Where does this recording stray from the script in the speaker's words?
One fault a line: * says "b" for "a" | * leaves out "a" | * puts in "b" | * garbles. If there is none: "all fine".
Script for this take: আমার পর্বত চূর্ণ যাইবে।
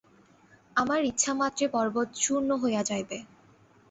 * puts in "ইচ্ছামাত্রে"
* puts in "হইয়া"